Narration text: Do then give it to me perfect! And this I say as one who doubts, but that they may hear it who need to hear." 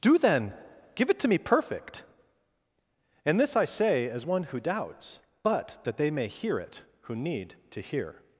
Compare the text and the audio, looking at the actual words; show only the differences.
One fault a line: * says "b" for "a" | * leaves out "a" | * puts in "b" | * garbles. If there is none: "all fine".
all fine